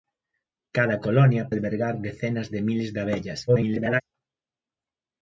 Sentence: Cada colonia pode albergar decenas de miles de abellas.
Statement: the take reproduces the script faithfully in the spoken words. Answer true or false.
false